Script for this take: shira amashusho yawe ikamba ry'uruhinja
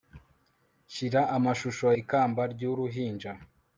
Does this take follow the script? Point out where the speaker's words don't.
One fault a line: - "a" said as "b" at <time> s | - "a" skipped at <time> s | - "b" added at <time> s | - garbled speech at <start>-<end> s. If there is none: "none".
- "yawe" skipped at 1.9 s